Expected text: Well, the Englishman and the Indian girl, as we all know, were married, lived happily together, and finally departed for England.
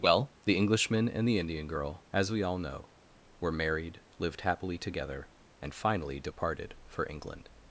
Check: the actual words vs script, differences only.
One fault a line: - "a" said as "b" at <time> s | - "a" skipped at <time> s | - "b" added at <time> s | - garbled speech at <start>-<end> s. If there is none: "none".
none